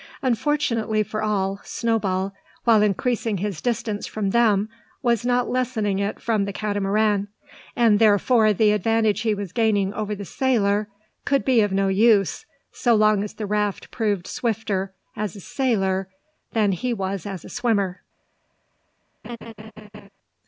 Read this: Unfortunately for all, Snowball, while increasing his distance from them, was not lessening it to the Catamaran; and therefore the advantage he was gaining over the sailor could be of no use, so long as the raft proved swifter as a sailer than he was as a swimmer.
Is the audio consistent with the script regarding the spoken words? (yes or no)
no